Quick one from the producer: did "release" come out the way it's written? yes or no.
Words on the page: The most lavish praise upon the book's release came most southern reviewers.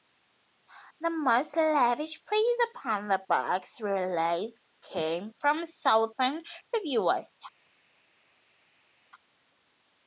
yes